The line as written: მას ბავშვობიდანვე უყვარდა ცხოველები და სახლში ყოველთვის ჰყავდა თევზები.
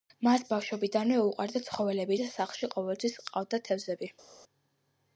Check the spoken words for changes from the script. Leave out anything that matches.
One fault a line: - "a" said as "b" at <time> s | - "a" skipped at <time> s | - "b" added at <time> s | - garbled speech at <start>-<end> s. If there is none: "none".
none